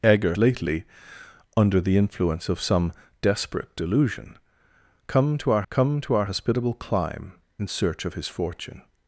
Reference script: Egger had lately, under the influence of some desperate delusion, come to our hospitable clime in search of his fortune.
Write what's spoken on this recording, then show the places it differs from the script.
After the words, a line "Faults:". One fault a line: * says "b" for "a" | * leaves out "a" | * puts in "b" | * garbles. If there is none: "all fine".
Egger lately, under the influence of some desperate delusion, come to our come to our hospitable clime in search of his fortune.
Faults:
* leaves out "had"
* puts in "come to our"